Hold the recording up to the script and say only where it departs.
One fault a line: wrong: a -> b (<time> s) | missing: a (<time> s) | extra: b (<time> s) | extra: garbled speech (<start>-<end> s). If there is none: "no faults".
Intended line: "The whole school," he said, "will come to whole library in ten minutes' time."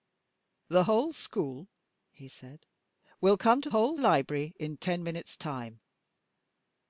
no faults